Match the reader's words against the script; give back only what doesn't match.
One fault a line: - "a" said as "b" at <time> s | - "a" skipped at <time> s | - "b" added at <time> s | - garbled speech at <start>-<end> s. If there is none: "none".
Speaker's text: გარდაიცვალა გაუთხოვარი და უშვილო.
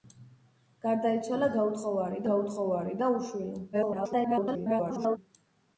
- "გაუთხოვარი" added at 2.3 s
- garbled speech at 3.7-5.2 s